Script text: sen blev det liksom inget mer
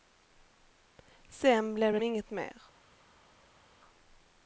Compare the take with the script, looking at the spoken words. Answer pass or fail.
fail